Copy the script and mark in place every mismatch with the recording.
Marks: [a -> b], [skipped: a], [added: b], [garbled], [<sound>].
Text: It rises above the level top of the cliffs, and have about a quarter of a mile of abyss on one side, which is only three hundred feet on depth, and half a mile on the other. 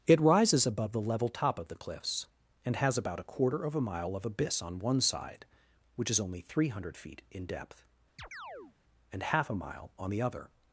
It rises above the level top of the cliffs, and [have -> has] about a quarter of a mile of abyss on one side, which is only three hundred feet [on -> in] depth, [chirp] and half a mile on the other.